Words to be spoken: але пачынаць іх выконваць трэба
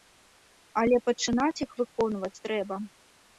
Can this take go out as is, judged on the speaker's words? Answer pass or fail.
pass